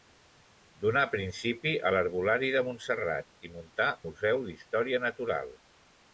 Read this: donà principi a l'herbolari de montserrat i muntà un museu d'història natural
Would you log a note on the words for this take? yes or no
yes